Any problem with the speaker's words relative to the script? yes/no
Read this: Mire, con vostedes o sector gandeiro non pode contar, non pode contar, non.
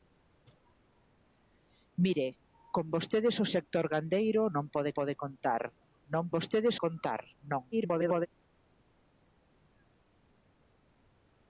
yes